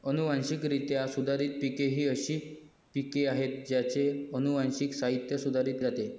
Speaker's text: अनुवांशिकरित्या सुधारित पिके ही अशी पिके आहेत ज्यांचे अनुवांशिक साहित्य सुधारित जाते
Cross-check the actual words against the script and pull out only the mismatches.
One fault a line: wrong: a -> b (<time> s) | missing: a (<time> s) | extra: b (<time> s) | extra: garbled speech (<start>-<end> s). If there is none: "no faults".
no faults